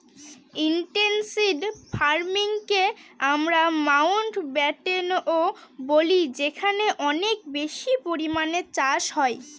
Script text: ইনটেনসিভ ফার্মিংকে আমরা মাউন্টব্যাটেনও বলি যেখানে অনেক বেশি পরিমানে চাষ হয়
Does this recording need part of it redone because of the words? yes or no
no